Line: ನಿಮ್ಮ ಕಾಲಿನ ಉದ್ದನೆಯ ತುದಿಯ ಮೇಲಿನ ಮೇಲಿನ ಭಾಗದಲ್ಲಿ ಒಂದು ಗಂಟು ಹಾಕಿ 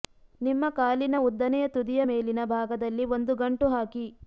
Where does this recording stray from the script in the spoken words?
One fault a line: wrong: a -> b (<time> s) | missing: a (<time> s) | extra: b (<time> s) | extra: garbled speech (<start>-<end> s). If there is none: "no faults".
missing: ಮೇಲಿನ (2.4 s)